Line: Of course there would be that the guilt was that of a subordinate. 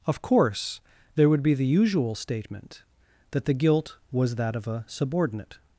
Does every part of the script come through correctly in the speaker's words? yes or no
no